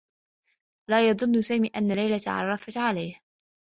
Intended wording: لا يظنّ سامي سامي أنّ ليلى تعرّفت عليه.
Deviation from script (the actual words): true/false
true